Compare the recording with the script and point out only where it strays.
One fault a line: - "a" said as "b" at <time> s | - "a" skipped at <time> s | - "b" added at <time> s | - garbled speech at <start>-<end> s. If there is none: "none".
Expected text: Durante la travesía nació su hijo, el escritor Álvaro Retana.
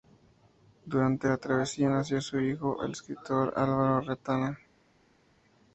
none